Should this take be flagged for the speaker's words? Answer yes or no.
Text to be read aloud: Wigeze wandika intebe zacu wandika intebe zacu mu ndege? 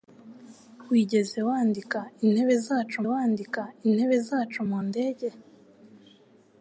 no